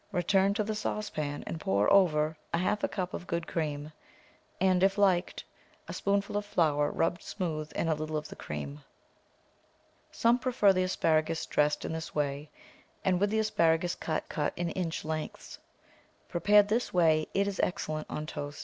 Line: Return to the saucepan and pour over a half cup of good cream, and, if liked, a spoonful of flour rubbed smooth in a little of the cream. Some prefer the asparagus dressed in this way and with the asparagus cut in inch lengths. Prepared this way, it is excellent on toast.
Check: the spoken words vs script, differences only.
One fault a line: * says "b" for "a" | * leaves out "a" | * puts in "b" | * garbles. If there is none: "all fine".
* puts in "cut"